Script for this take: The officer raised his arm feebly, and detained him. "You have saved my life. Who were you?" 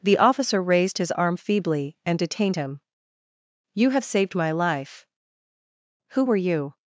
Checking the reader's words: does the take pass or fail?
pass